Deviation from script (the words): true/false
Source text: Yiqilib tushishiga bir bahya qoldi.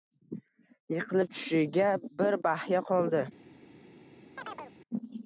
false